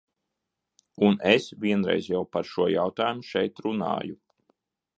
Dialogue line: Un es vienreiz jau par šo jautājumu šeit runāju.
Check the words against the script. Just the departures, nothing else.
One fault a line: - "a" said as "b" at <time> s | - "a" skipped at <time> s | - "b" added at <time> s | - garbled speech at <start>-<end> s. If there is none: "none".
none